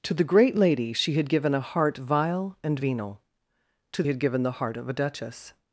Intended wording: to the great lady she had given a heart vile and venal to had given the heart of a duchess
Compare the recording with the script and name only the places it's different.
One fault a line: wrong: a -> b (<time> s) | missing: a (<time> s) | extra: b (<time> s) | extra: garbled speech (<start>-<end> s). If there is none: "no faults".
no faults